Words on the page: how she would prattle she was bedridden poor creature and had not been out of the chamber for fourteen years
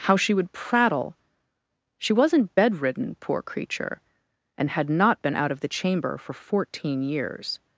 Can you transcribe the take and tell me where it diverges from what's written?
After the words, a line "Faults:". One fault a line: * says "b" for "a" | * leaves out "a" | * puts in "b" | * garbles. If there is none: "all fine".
how she would prattle she wasn't bedridden poor creature and had not been out of the chamber for fourteen years
Faults:
* says "wasn't" for "was"